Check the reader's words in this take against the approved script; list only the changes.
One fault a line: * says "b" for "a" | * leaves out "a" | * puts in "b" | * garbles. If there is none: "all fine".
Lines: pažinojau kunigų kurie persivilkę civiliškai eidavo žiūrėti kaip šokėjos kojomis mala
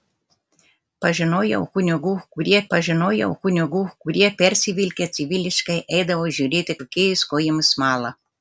* puts in "pažinojau kunigų kurie"
* leaves out "kaip"